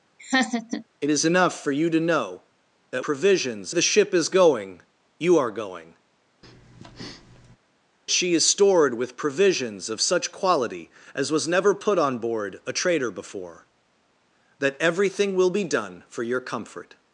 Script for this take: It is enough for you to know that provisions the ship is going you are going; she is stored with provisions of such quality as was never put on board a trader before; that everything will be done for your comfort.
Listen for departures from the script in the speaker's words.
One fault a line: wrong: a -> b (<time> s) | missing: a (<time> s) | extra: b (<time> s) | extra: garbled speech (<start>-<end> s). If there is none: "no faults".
no faults